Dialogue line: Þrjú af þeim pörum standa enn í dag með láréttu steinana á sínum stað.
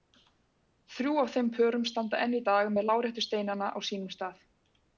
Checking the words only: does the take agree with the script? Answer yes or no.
yes